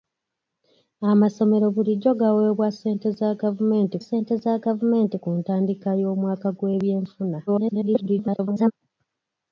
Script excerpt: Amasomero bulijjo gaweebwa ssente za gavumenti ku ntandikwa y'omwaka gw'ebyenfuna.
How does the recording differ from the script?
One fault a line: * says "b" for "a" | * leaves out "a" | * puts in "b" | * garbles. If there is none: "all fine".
* puts in "ssente za gavumenti"
* garbles